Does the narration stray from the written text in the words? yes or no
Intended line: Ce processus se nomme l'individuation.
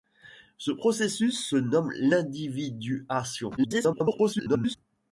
yes